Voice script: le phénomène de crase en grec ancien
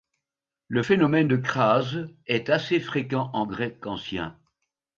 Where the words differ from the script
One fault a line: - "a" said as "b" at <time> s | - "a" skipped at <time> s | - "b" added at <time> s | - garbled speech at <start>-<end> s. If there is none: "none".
- "est assez fréquent" added at 2.3 s